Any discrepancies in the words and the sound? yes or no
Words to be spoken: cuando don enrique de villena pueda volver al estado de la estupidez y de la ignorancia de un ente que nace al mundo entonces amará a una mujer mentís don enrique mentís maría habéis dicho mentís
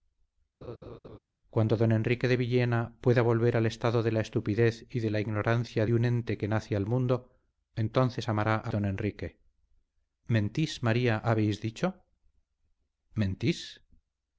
yes